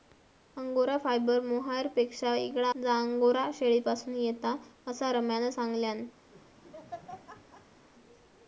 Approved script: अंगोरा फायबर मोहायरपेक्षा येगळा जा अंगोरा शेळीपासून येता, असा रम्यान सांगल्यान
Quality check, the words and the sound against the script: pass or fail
fail